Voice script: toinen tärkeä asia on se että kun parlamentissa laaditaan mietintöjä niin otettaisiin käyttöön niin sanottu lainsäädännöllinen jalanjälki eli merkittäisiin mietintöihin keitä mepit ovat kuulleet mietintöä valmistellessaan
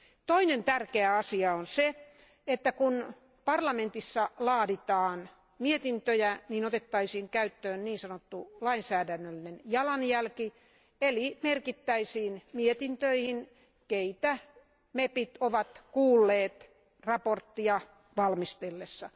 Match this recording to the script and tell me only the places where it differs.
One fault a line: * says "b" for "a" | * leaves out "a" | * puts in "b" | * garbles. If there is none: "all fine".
all fine